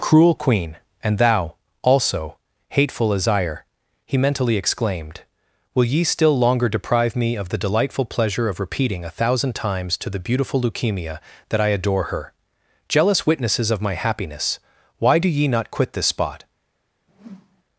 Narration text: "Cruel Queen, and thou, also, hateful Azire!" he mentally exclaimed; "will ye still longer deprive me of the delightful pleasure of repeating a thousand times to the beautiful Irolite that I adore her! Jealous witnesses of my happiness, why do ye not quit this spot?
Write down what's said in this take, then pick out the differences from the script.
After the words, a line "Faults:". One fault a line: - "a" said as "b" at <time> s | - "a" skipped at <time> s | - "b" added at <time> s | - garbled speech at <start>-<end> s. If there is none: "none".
"Cruel Queen, and thou, also, hateful Azire!" he mentally exclaimed; "will ye still longer deprive me of the delightful pleasure of repeating a thousand times to the beautiful Leukemia that I adore her! Jealous witnesses of my happiness, why do ye not quit this spot?
Faults:
- "Irolite" said as "Leukemia" at 10.6 s